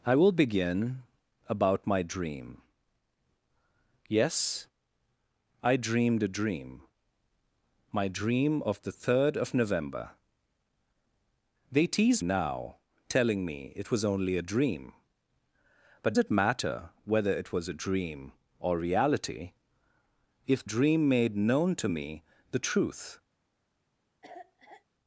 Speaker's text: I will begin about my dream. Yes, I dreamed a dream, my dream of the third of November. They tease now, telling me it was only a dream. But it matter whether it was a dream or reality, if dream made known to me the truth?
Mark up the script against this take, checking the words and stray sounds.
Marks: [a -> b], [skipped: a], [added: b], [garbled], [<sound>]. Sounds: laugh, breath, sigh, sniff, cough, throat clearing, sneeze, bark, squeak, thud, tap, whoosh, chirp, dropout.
I will begin about my dream. Yes, I dreamed a dream, my dream of the third of November. They tease now, telling me it was only a dream. But it matter whether it was a dream or reality, if dream made known to me the truth? [cough]